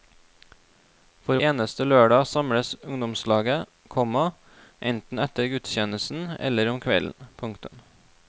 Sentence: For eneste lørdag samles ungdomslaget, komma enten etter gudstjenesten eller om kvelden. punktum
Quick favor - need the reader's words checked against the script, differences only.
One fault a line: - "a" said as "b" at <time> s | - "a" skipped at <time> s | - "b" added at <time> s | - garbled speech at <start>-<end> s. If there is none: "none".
none